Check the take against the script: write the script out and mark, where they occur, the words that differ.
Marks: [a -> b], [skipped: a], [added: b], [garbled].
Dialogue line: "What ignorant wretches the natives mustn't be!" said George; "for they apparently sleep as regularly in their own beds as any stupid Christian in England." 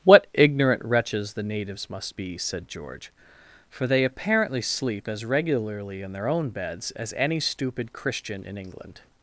"What ignorant wretches the natives [mustn't -> must] be!" said George; "for they apparently sleep as regularly in their own beds as any stupid Christian in England."